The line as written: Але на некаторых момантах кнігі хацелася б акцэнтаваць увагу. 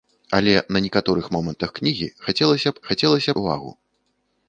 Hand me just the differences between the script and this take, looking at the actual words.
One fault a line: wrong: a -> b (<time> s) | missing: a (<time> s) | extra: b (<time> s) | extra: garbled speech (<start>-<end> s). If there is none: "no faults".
wrong: акцэнтаваць -> хацелася (2.9 s)